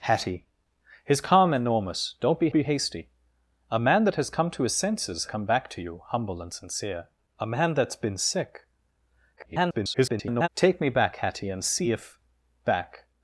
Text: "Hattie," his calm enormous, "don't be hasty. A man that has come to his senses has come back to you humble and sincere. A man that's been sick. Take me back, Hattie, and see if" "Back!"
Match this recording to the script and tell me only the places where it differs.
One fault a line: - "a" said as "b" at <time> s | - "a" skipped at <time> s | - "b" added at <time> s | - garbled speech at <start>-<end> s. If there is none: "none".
- "be" added at 2.5 s
- "has" skipped at 5.3 s
- garbled speech at 9.4-10.5 s